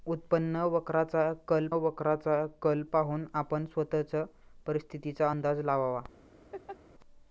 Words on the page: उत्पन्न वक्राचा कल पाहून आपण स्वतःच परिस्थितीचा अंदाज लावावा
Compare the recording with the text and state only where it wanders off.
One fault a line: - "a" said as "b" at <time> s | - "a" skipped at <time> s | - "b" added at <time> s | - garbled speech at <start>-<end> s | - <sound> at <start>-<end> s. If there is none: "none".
- "वक्राचा कल" added at 1.8 s
- laugh at 6.5-6.8 s